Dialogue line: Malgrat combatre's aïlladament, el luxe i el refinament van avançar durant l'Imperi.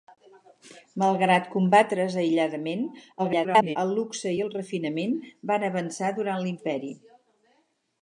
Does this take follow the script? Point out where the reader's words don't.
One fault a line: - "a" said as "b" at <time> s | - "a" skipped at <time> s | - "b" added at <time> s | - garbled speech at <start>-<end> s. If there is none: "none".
- garbled speech at 3.2-3.8 s